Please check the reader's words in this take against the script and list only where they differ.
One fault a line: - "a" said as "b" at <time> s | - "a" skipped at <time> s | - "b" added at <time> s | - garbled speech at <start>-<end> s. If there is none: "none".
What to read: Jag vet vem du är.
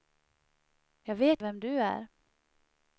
none